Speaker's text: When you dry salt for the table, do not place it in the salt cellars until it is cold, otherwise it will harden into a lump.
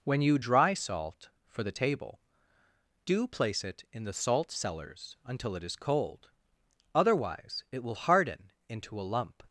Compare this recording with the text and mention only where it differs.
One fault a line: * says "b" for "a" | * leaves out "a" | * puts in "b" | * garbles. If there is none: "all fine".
* leaves out "not"